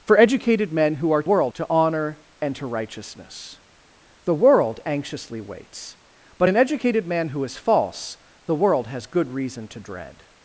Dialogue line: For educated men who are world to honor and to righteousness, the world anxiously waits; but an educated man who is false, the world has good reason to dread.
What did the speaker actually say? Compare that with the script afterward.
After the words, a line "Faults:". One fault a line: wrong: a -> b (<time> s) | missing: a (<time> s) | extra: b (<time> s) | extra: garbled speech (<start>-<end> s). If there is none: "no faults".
For educated men who are world to honor and to righteousness, the world anxiously waits; but an educated man who is false, the world has good reason to dread.
Faults:
no faults